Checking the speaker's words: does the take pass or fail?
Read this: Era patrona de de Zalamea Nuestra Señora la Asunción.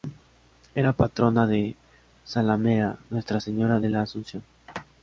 fail